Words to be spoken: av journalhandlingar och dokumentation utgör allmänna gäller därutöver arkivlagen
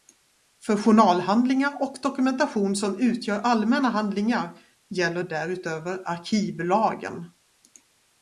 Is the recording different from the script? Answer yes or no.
yes